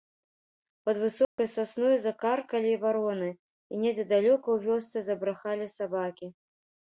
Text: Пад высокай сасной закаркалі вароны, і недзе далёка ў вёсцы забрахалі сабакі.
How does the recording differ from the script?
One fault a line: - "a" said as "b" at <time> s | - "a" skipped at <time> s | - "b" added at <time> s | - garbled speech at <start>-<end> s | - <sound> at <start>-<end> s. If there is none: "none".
- dropout at 1.2-1.4 s